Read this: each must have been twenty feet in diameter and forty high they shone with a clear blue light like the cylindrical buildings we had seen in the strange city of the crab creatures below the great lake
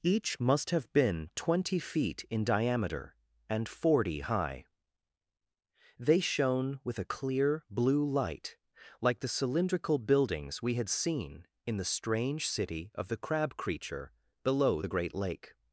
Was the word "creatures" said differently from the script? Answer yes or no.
yes